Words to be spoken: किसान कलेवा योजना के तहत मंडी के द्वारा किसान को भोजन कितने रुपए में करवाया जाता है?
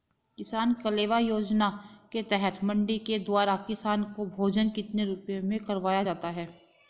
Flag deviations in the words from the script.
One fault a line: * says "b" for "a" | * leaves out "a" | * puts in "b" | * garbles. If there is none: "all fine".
all fine